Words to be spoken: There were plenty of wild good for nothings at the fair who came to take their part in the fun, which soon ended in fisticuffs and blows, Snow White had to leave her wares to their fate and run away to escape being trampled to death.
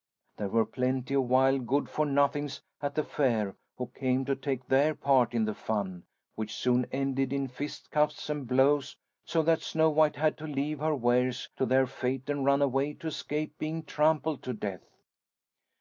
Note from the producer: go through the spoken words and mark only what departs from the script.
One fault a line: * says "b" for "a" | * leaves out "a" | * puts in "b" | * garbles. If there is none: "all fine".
* puts in "so that"